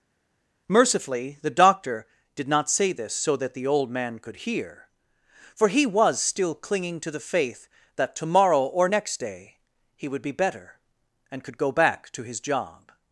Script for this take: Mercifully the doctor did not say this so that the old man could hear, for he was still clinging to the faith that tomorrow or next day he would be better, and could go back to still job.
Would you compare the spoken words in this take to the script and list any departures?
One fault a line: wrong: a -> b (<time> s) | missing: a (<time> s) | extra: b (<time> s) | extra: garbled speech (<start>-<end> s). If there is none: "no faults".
wrong: still -> his (12.2 s)